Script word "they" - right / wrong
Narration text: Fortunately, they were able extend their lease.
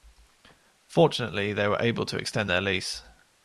right